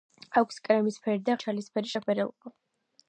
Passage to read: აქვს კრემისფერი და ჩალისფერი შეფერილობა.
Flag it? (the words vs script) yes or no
no